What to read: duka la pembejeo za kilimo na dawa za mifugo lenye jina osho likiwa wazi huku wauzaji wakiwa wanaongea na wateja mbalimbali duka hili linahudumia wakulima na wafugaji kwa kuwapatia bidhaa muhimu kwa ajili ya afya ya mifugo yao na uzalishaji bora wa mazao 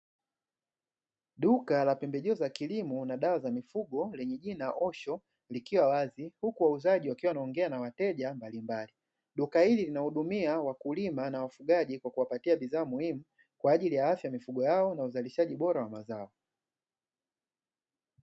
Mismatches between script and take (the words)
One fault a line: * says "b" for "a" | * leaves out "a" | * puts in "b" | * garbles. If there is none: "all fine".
all fine